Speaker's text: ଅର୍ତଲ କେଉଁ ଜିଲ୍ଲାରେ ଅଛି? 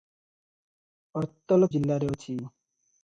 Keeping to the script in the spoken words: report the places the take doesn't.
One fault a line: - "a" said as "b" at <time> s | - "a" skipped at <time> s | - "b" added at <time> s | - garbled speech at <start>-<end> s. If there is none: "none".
- "କେଉଁ" skipped at 1.7 s